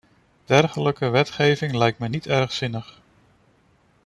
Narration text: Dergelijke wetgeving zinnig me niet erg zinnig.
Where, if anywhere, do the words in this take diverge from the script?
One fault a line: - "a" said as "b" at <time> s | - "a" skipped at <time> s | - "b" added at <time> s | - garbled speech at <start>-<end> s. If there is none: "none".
- "zinnig" said as "lijkt" at 1.8 s